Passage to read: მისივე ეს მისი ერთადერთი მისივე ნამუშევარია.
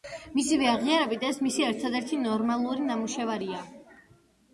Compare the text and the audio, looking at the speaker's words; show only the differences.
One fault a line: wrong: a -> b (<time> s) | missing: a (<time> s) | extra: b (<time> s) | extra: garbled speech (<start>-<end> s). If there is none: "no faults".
extra: აღიარებით (0.7 s)
wrong: მისივე -> ნორმალური (2.2 s)